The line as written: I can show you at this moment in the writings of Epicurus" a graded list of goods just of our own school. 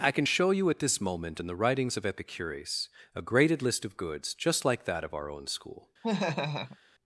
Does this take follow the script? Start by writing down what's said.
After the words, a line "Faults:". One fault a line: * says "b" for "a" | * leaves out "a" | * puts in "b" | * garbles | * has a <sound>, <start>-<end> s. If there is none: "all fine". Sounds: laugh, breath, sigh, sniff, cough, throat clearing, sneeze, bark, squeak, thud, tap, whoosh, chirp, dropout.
I can show you at this moment in the writings of Epicurus" a graded list of goods just like that of our own school.
Faults:
* puts in "like that"
* has a laugh, 6.0-6.8 s